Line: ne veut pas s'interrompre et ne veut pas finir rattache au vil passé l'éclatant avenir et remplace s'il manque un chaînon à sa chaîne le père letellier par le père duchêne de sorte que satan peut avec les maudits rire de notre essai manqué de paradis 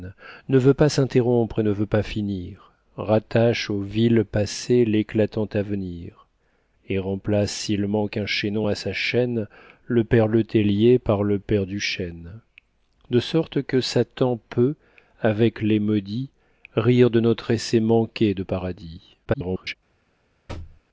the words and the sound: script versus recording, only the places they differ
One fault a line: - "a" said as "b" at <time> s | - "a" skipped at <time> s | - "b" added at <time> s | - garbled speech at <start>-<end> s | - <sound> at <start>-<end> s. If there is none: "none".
- garbled speech at 19.2-19.7 s
- thud at 20.5-20.8 s